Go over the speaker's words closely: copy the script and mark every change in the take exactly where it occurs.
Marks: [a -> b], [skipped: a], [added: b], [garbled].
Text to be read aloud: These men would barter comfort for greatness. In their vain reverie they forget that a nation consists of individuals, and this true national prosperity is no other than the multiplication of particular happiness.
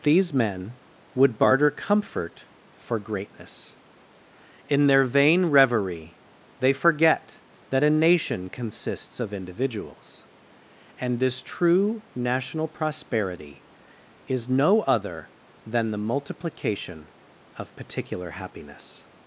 These men would barter comfort for greatness. In their vain reverie they forget that a nation consists of individuals, and this true national prosperity is no other than the multiplication of particular happiness.